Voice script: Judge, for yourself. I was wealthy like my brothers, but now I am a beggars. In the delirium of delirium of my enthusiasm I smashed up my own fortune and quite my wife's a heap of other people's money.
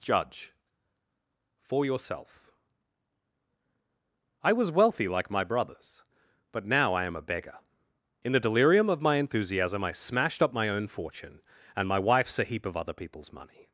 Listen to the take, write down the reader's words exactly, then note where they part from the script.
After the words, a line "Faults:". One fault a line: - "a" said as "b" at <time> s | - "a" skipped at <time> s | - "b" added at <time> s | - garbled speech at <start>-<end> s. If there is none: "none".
Judge, for yourself. I was wealthy like my brothers, but now I am a beggar. In the delirium of my enthusiasm I smashed up my own fortune and my wife's a heap of other people's money.
Faults:
- "beggars" said as "beggar" at 7.2 s
- "delirium of" skipped at 9.0 s
- "quite" skipped at 11.9 s